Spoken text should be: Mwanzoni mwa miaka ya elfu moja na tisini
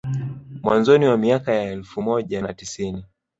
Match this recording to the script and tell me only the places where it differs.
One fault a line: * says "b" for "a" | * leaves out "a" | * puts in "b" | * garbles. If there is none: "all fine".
all fine